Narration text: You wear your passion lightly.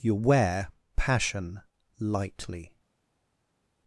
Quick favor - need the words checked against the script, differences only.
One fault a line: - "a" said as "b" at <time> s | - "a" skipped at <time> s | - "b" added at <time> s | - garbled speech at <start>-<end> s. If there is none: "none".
- "your" skipped at 0.7 s